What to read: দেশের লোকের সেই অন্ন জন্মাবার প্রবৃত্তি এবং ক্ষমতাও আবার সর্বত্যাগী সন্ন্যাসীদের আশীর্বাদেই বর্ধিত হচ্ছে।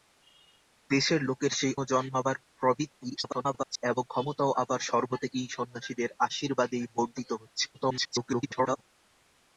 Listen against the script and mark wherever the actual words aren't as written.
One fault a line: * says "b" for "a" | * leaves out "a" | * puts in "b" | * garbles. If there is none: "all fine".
* leaves out "অন্ন"
* garbles
* garbles